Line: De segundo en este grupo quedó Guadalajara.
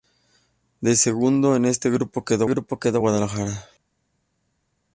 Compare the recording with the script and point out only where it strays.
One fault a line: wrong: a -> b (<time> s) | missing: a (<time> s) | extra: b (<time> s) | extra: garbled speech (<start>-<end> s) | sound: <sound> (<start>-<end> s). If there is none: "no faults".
extra: grupo quedó (2.5 s)